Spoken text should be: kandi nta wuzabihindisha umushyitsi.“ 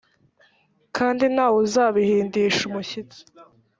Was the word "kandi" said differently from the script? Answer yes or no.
no